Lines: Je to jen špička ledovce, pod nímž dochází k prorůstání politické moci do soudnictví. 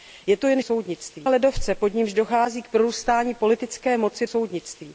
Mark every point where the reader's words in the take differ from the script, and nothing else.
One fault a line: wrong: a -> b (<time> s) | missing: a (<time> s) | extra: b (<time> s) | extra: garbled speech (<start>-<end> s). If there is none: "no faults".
wrong: špička -> soudnictví (0.6 s)
missing: do (4.3 s)